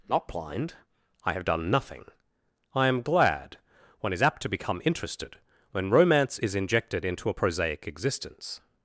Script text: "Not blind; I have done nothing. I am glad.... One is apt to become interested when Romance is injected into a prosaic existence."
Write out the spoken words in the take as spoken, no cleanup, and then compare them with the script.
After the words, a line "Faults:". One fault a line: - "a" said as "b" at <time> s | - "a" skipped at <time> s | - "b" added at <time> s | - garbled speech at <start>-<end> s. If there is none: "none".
"Not blind; I have done nothing. I am glad.... One is apt to become interested when Romance is injected into a prosaic existence."
Faults:
none